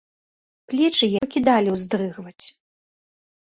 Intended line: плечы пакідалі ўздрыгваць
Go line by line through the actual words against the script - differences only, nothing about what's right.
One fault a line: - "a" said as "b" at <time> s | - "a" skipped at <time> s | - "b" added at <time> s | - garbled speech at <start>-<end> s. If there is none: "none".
none